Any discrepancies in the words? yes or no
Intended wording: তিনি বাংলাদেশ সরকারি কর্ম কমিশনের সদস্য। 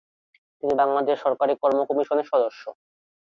no